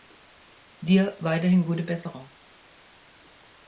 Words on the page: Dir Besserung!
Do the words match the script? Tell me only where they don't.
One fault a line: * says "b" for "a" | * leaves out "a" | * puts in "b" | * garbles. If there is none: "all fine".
* puts in "weiterhin gute"